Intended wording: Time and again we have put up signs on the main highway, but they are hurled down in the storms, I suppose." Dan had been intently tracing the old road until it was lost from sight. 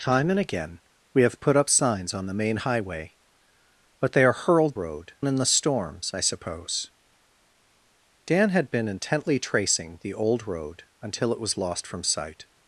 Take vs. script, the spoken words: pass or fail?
fail